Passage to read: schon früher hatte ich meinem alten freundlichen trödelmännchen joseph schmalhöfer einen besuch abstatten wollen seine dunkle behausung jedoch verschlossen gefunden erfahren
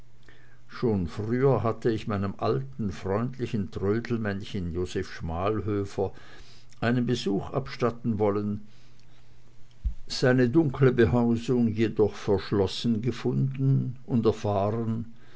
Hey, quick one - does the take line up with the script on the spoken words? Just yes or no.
no